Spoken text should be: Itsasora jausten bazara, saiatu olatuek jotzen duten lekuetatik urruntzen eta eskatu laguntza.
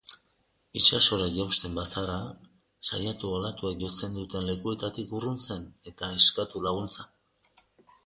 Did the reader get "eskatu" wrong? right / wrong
right